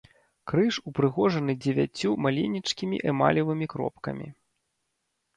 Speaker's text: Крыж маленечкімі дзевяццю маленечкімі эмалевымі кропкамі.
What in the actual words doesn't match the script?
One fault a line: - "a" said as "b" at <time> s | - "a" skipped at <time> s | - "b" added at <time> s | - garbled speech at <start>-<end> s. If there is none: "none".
- "маленечкімі" said as "упрыгожаны" at 0.9 s